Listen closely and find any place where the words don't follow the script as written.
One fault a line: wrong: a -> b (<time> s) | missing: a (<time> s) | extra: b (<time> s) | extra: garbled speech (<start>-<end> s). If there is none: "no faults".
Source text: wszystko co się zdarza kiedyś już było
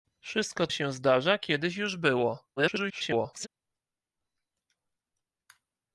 missing: co (0.7 s)
extra: garbled speech (2.6-3.5 s)